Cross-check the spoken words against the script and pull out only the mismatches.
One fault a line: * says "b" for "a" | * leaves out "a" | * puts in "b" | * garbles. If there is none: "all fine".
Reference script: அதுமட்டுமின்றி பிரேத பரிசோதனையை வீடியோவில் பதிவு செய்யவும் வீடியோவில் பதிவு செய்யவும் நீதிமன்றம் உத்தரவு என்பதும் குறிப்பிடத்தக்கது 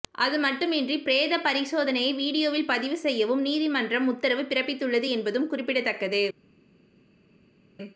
* leaves out "வீடியோவில் பதிவு செய்யவும்"
* puts in "பிறப்பித்துள்ளது"